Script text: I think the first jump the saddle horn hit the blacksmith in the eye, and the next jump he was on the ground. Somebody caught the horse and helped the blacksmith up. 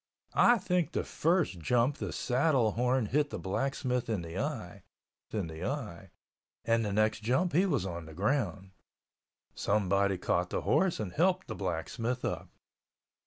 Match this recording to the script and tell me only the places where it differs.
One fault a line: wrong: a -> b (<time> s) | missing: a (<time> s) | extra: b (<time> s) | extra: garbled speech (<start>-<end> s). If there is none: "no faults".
extra: in the eye (5.3 s)